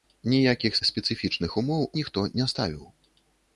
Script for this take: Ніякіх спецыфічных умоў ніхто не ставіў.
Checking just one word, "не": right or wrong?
right